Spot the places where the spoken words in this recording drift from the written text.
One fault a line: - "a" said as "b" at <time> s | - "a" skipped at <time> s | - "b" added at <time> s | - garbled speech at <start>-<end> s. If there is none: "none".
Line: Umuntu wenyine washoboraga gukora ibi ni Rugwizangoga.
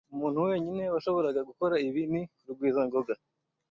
none